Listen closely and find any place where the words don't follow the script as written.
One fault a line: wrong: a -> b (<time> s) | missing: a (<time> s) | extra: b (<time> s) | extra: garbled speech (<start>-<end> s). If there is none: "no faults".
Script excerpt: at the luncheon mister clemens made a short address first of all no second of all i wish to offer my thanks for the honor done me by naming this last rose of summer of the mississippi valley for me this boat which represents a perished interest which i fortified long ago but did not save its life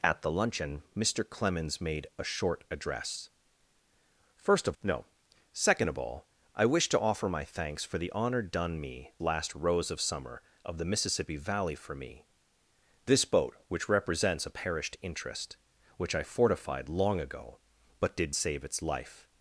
missing: all (4.8 s)
missing: by naming this (9.1 s)
missing: not (18.4 s)